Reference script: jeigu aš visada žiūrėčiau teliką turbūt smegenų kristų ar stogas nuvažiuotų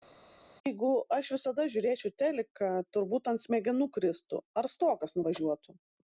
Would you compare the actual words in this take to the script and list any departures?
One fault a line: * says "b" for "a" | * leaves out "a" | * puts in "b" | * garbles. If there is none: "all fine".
* puts in "ant"